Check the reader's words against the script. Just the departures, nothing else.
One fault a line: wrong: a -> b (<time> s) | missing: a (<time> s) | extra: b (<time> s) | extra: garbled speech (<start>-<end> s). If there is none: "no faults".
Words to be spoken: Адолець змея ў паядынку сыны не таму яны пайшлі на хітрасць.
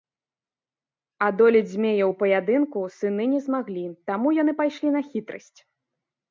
extra: змаглі (3.5 s)